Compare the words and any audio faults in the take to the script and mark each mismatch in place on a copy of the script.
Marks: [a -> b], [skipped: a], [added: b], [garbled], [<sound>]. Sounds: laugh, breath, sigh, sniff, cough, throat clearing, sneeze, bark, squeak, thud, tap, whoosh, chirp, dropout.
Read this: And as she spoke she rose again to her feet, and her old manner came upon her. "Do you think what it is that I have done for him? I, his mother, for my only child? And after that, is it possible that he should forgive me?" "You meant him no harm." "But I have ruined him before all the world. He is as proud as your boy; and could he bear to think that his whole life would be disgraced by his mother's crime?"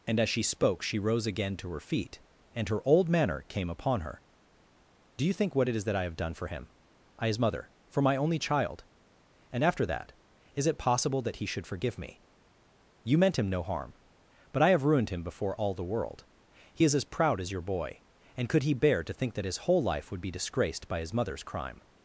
And as she spoke she rose again to her feet, and her old manner came upon her. "Do you think what it is that I have done for him? I, his mother, for my only child? And after that, is it possible that he should forgive me?" "You meant him no harm." "But I have ruined him before all the world. He is as proud as your boy; and could he bear to think that his whole life would be disgraced by his mother's crime?"